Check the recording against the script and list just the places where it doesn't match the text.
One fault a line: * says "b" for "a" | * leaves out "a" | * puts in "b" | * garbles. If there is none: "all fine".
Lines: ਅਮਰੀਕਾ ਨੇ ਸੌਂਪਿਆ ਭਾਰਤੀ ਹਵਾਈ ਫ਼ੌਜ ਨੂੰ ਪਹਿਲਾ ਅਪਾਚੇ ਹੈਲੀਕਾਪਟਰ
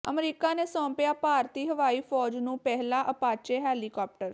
all fine